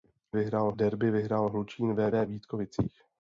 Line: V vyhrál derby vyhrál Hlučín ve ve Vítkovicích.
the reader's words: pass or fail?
pass